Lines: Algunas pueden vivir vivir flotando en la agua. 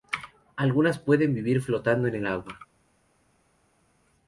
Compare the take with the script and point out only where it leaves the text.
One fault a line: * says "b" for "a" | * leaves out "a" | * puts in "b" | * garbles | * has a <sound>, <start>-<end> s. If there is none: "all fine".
* leaves out "vivir"
* says "el" for "la"